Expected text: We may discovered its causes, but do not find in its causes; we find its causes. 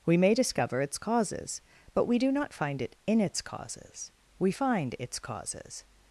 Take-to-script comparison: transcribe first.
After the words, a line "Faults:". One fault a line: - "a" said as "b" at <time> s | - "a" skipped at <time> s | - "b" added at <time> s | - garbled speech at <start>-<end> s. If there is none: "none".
We may discover its causes, but we do not find it in its causes; we find its causes.
Faults:
- "discovered" said as "discover" at 0.3 s
- "we" added at 2.0 s
- "it" added at 2.8 s